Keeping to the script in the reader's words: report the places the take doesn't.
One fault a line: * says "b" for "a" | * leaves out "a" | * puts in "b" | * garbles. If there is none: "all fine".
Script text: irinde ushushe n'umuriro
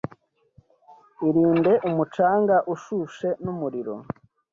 * puts in "umucanga"